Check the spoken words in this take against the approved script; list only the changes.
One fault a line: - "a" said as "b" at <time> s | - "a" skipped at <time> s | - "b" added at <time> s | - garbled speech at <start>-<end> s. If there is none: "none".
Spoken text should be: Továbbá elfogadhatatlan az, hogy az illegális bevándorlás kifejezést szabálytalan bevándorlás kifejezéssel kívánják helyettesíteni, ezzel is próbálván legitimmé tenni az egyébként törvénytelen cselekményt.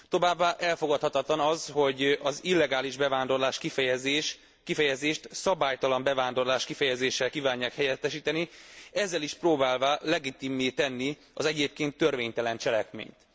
none